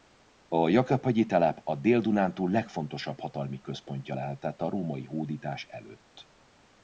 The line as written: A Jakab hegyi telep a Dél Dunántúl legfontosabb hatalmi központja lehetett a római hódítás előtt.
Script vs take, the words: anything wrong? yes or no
no